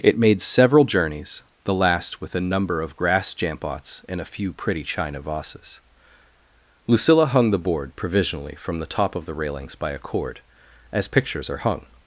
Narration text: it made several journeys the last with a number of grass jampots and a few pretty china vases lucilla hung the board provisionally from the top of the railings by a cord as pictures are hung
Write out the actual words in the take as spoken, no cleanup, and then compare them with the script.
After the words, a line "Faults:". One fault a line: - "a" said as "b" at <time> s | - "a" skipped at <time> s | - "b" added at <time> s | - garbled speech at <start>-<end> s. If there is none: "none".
it made several journeys the last with a number of grass jampots and a few pretty china vases lucilla hung the board provisionally from the top of the railings by a cord as pictures are hung
Faults:
none